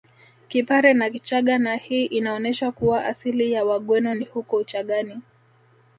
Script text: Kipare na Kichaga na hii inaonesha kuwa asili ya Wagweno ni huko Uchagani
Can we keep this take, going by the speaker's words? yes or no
yes